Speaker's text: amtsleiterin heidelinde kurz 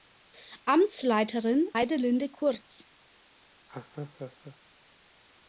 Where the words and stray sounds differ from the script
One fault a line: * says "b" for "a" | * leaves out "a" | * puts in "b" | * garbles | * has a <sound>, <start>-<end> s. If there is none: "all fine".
* has a laugh, 3.7-4.6 s